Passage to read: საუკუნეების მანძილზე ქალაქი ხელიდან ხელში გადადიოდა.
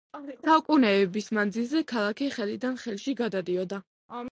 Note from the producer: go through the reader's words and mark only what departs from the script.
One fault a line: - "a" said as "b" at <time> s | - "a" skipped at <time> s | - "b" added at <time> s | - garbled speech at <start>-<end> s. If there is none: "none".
none